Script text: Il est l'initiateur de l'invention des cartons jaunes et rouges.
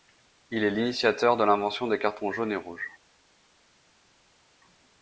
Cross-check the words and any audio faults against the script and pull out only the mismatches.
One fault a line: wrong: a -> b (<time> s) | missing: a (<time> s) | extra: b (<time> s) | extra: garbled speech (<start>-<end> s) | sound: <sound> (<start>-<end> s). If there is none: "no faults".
no faults